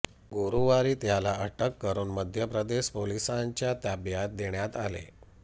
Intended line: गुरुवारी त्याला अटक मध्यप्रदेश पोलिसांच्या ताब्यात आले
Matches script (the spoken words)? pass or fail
fail